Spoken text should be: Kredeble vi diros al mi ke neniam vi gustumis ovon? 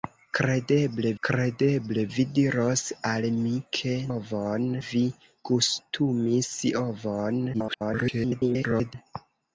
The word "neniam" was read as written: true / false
false